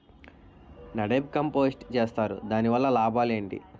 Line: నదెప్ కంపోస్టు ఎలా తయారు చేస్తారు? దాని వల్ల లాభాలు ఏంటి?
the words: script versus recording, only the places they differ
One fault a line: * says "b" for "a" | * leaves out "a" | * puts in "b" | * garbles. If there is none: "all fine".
* leaves out "ఎలా తయారు"